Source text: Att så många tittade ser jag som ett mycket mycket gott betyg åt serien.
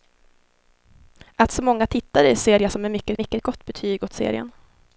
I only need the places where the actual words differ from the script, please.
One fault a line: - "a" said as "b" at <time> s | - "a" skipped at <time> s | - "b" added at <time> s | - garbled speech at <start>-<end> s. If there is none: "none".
none